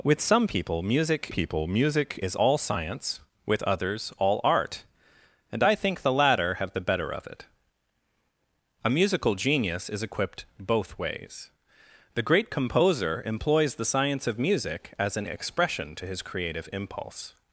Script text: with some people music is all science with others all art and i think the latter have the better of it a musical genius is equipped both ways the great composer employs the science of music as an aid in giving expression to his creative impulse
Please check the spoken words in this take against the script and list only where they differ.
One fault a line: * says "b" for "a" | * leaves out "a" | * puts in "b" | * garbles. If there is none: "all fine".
* puts in "people music"
* leaves out "aid in giving"